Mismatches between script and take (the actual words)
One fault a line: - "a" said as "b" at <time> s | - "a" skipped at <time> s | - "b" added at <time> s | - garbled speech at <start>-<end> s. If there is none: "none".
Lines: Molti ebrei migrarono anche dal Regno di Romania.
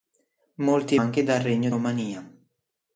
- "ebrei migrarono" skipped at 0.9 s
- "di" skipped at 1.7 s